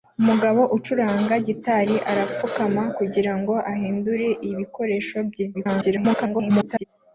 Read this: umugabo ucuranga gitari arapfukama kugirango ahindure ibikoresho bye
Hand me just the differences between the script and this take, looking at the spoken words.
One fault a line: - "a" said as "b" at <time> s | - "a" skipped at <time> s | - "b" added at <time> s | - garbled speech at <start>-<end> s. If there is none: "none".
- garbled speech at 5.5-6.8 s